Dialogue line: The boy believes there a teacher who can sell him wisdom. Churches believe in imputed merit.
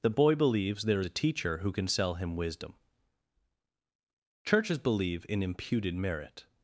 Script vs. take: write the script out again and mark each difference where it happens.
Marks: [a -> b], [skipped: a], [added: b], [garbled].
The boy believes there a teacher who can sell him wisdom. Churches believe in imputed merit.